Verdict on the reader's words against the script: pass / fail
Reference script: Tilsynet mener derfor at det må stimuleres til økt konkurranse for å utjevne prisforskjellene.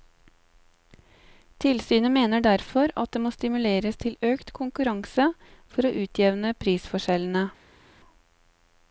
pass